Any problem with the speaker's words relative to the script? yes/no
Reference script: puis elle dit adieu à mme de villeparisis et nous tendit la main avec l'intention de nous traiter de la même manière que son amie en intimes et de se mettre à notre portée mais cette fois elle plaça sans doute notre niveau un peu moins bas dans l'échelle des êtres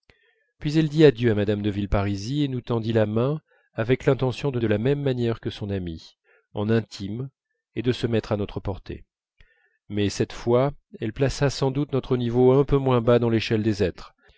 yes